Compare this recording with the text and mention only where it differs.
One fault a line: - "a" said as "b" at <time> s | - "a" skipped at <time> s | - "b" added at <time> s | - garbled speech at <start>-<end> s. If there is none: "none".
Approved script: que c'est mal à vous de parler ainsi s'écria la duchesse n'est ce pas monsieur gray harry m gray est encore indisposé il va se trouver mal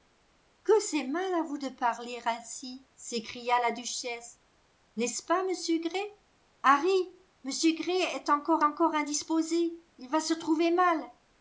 - "encore" added at 8.6 s